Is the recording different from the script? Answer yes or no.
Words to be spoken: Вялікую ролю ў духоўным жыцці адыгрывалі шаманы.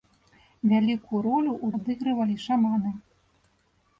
yes